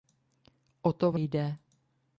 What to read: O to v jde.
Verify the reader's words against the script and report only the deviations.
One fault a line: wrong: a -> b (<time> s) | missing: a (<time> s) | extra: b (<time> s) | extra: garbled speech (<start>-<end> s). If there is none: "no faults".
no faults